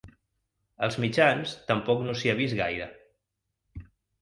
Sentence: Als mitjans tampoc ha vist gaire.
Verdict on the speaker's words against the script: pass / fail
fail